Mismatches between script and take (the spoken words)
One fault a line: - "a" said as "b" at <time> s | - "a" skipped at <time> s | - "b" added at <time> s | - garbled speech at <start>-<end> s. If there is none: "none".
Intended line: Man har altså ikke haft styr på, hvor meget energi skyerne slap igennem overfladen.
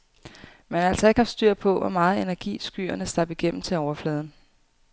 - "til" added at 3.6 s